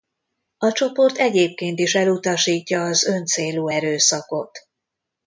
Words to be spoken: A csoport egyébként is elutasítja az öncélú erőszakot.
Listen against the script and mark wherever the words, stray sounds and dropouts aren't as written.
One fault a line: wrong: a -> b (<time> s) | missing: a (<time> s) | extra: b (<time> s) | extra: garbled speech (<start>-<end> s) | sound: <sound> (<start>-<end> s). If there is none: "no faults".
no faults